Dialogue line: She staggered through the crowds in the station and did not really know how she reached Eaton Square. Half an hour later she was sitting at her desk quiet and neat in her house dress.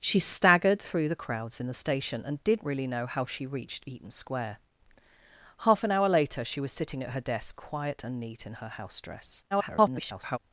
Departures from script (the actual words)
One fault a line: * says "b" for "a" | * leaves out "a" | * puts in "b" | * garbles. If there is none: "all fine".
* leaves out "not"
* garbles